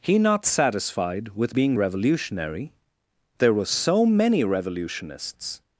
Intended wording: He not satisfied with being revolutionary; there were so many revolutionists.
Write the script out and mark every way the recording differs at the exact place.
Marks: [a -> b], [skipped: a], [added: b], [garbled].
He not satisfied with being revolutionary; there were so many revolutionists.